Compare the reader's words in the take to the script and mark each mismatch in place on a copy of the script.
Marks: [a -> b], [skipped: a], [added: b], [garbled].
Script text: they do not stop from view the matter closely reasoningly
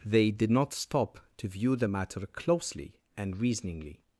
they [do -> did] not stop [from -> to] view the matter closely [added: and] reasoningly